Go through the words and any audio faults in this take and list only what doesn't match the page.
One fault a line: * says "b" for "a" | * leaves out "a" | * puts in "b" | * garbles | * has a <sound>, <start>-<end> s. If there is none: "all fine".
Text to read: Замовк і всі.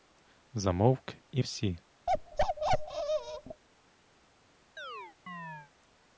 * has a bark, 2.1-3.6 s
* has a chirp, 4.8-5.7 s